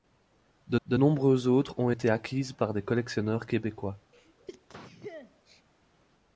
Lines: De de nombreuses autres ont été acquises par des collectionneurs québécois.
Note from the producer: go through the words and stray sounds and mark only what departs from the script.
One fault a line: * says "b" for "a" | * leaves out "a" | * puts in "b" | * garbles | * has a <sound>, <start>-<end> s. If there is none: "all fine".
* has a sneeze, 4.1-5.6 s